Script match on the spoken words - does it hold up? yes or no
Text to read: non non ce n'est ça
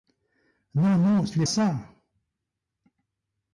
yes